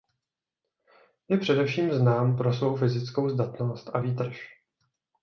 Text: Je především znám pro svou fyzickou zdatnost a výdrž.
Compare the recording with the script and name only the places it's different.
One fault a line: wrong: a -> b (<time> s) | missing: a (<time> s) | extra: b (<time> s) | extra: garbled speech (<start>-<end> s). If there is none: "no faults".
no faults